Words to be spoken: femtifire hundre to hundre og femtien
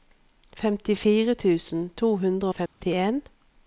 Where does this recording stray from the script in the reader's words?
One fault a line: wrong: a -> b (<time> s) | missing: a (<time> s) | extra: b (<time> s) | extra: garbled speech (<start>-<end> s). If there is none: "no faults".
wrong: hundre -> tusen (1.3 s)